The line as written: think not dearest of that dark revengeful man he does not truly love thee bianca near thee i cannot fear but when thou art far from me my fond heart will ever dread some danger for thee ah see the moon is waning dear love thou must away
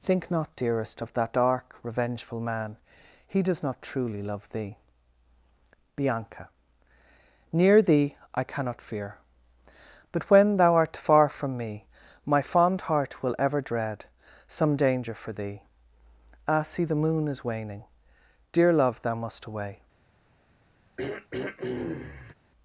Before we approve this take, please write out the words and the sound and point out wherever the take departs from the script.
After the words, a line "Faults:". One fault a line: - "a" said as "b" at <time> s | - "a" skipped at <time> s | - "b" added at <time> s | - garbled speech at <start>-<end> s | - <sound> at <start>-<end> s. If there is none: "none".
think not dearest of that dark revengeful man he does not truly love thee bianca near thee i cannot fear but when thou art far from me my fond heart will ever dread some danger for thee ah see the moon is waning dear love thou must away
Faults:
- throat clearing at 21.0-22.3 s